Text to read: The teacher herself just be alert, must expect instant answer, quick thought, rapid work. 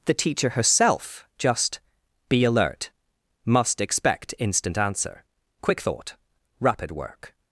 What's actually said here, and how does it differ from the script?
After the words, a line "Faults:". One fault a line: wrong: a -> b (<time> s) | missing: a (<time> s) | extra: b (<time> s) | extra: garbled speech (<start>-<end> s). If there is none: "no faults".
The teacher herself just be alert, must expect instant answer, quick thought, rapid work.
Faults:
no faults